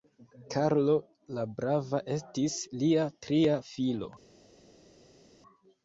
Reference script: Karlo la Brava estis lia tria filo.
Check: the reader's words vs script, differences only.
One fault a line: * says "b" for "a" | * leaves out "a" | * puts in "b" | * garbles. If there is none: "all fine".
all fine